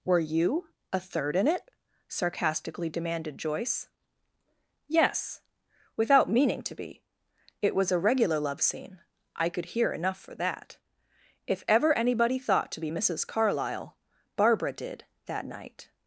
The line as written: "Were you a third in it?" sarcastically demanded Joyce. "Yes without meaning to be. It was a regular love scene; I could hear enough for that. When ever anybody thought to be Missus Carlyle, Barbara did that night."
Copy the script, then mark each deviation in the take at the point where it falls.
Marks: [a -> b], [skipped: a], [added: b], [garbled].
"Were you a third in it?" sarcastically demanded Joyce. "Yes without meaning to be. It was a regular love scene; I could hear enough for that. [When -> If] ever anybody thought to be Missus Carlyle, Barbara did that night."